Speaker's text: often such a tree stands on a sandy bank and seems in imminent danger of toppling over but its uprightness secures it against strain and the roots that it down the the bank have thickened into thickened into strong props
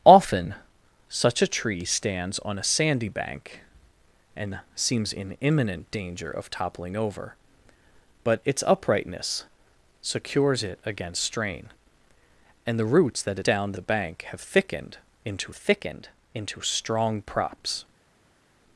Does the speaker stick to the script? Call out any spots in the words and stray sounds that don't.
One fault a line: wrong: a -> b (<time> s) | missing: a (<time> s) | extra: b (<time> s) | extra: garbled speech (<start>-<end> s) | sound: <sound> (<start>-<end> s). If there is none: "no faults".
no faults